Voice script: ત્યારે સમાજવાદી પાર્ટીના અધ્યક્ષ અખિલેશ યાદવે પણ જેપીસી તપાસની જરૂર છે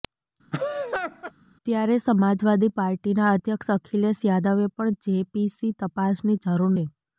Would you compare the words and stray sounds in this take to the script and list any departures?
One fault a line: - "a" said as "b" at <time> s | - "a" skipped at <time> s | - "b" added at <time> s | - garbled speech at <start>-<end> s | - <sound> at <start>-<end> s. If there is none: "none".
- laugh at 0.5-1.3 s